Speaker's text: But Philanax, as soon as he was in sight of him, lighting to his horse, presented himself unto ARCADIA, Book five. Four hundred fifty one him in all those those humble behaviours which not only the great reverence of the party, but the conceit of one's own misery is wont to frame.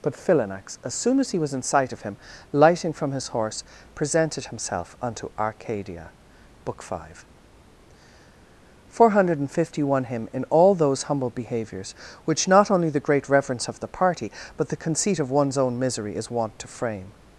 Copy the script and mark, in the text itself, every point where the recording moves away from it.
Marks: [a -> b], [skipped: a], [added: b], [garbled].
But Philanax, as soon as he was in sight of him, lighting [to -> from] his horse, presented himself unto ARCADIA, Book five. Four hundred fifty one him in all those [skipped: those] humble behaviours which not only the great reverence of the party, but the conceit of one's own misery is wont to frame.